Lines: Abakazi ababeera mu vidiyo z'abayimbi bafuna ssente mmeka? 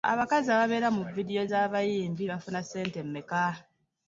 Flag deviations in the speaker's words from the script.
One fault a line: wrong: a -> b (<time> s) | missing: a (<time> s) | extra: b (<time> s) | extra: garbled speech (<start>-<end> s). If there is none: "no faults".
no faults